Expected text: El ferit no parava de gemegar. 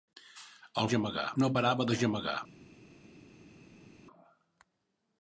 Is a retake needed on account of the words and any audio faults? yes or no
yes